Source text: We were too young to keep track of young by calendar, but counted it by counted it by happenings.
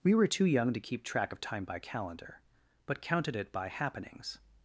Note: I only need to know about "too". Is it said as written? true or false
true